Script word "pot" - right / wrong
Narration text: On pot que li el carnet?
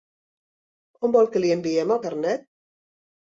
wrong